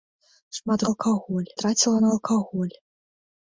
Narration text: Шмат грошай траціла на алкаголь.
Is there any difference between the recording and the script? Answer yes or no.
yes